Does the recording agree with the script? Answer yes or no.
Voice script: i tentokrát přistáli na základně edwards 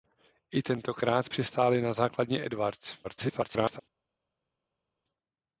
no